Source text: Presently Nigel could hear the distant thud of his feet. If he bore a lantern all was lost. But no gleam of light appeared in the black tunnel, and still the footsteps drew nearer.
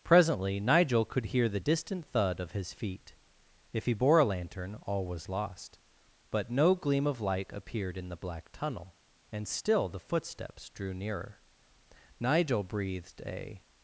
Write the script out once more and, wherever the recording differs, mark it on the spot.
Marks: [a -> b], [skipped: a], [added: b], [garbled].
Presently Nigel could hear the distant thud of his feet. If he bore a lantern all was lost. But no gleam of light appeared in the black tunnel, and still the footsteps drew nearer. [added: Nigel breathed a]